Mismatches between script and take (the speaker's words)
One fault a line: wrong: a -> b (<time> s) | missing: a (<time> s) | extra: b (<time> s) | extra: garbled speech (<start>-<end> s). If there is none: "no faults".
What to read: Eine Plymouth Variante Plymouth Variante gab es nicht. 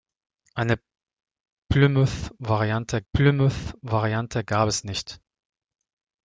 no faults